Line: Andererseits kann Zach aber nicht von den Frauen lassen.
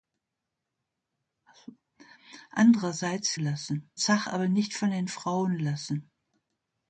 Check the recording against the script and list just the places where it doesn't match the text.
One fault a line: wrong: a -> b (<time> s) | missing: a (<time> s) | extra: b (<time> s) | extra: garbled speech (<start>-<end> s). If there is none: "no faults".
wrong: kann -> lassen (3.4 s)